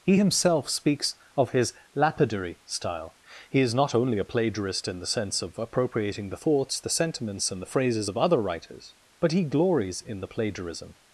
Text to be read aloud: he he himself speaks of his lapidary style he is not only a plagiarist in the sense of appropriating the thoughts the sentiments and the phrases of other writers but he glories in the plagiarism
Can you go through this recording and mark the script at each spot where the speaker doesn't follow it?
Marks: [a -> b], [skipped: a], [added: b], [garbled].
he [skipped: he] himself speaks of his lapidary style he is not only a plagiarist in the sense of appropriating the thoughts the sentiments and the phrases of other writers but he glories in the plagiarism